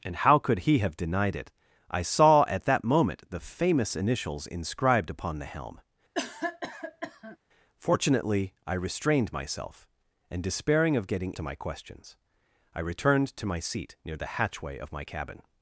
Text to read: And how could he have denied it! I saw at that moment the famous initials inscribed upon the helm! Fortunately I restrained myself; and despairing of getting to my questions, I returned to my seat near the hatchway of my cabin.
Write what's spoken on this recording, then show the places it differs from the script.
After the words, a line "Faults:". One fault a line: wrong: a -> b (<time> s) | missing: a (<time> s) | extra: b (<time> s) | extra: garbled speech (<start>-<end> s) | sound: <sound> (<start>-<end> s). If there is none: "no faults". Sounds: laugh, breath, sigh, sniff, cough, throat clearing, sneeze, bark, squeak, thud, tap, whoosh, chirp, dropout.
And how could he have denied it! I saw at that moment the famous initials inscribed upon the helm! Fortunately I restrained myself; and despairing of getting to my questions, I returned to my seat near the hatchway of my cabin.
Faults:
sound: cough (6.1-7.4 s)